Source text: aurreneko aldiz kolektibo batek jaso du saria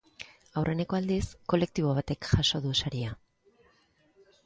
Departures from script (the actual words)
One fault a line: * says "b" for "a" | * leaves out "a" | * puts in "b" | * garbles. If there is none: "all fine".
all fine